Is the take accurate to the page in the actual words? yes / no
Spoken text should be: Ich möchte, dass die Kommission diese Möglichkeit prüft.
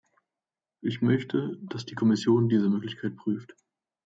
yes